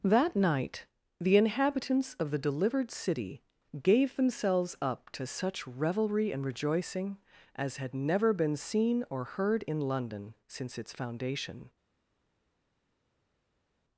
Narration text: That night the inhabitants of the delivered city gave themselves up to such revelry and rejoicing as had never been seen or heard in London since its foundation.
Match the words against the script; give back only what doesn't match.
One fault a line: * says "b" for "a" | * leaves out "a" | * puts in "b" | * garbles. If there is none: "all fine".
all fine